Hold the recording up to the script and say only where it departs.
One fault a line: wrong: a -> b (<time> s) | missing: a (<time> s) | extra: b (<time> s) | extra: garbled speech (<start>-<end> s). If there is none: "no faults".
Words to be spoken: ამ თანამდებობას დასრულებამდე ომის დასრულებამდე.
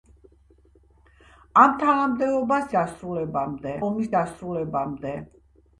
no faults